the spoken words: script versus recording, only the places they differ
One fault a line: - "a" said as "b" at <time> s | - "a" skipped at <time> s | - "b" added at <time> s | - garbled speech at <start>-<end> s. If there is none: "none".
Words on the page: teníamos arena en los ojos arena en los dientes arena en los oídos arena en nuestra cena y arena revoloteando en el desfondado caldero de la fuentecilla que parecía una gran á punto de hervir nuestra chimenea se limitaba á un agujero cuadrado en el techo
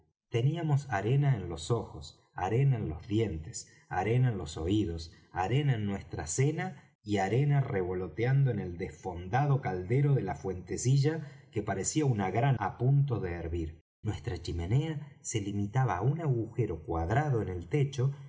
none